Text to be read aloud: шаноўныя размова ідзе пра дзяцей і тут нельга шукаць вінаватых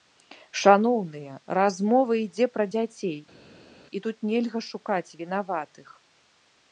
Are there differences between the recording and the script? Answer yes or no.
no